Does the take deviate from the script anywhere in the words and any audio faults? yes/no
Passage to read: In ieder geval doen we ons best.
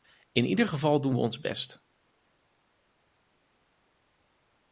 no